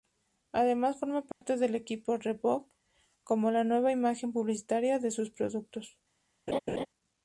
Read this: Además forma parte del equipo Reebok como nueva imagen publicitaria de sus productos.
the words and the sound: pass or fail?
fail